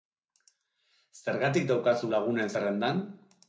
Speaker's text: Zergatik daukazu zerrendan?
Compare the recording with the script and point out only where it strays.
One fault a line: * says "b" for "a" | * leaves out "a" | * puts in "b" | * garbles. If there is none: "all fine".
* puts in "lagunen"